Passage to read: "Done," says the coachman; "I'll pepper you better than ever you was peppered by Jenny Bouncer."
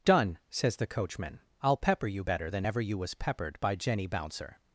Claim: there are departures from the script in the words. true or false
false